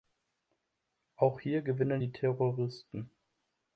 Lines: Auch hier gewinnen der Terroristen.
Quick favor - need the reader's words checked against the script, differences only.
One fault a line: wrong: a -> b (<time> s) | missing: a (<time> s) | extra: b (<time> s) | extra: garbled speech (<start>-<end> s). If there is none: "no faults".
wrong: der -> die (2.0 s)